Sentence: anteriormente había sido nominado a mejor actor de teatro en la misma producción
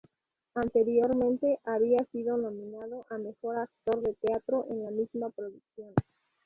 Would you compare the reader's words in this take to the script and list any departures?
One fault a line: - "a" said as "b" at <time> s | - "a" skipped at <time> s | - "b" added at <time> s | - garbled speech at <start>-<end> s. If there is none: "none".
none